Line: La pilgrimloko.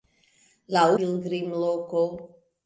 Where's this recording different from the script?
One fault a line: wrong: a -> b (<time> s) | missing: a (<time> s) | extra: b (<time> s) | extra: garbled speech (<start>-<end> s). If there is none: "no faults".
no faults